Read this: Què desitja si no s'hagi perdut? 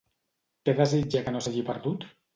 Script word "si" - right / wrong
wrong